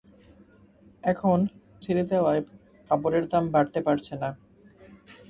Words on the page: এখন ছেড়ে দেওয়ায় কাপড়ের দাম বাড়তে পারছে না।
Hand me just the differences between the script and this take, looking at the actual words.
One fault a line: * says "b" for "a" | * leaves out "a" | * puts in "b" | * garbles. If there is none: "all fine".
all fine